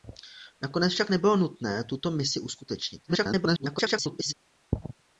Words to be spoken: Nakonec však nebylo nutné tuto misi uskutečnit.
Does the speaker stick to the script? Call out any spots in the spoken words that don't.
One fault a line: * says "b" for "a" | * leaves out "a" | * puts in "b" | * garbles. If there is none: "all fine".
* garbles